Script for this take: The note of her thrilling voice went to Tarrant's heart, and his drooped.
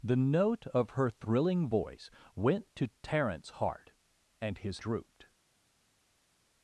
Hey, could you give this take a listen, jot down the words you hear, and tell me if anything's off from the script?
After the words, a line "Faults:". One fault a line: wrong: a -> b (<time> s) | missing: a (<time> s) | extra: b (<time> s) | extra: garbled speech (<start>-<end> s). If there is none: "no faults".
The note of her thrilling voice went to Tarrant's heart, and his drooped.
Faults:
no faults